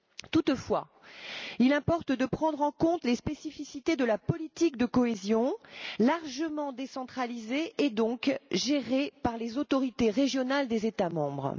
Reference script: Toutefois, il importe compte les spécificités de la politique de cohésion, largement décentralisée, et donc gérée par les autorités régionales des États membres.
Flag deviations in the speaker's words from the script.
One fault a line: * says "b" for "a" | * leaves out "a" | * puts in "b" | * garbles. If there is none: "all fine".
* puts in "de prendre en"